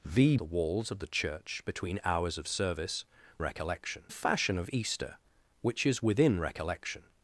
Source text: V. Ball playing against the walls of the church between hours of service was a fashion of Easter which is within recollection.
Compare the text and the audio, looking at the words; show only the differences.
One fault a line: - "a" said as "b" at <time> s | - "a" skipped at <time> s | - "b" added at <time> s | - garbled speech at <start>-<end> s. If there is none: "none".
- "Ball playing against" skipped at 0.3 s
- "was" said as "recollection" at 3.4 s